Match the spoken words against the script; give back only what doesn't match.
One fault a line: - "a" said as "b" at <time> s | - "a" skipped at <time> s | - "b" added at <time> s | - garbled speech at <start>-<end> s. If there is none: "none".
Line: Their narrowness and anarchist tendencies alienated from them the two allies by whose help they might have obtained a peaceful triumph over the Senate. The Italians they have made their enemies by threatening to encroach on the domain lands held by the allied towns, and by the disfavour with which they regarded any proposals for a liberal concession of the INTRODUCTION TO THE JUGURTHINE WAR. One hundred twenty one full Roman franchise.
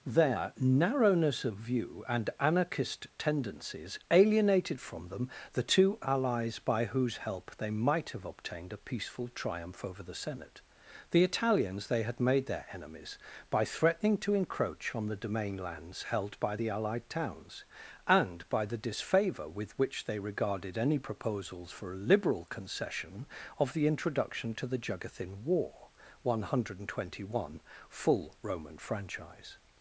- "of view" added at 1.4 s
- "have" said as "had" at 12.0 s